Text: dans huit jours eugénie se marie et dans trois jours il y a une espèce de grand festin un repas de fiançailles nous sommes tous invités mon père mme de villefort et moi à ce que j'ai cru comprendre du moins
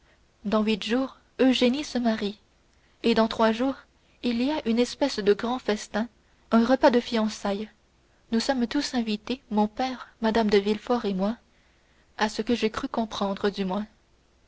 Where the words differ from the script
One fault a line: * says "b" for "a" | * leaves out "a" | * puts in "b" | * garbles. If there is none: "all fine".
all fine